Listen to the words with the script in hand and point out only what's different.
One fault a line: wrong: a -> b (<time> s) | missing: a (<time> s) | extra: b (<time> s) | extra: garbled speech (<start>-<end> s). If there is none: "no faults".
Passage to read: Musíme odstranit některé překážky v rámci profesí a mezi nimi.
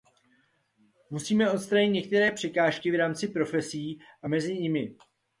no faults